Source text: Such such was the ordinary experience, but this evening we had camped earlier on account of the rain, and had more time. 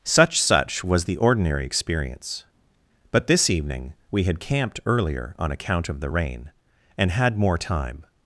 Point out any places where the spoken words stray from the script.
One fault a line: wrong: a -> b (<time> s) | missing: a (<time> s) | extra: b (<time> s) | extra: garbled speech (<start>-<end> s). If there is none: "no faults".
no faults